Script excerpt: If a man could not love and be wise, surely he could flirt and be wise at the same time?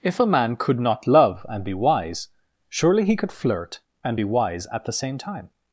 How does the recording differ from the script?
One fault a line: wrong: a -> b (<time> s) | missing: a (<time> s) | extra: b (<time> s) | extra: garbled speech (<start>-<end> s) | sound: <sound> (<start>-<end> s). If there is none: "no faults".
no faults